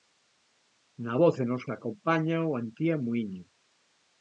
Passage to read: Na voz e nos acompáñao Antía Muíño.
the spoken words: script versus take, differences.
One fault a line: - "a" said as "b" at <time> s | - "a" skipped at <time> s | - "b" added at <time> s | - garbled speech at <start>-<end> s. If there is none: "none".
none